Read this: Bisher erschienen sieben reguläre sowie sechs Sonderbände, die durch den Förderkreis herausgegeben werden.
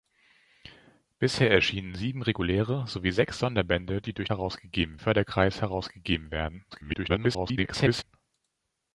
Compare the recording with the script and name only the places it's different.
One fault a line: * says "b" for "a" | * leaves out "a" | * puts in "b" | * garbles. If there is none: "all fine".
* says "herausgegeben" for "den"
* garbles